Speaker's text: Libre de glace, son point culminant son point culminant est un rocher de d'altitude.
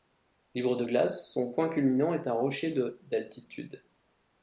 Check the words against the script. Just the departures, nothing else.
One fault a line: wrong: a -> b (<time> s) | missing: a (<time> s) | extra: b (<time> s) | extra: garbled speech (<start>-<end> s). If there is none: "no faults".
missing: son point culminant (2.1 s)